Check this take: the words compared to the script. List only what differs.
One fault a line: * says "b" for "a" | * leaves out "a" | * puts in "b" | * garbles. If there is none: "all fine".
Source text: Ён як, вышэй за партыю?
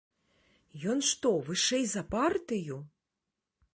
* says "што" for "як"